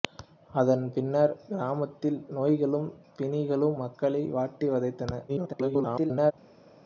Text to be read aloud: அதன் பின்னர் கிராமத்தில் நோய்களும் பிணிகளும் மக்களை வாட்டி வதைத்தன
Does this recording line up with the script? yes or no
no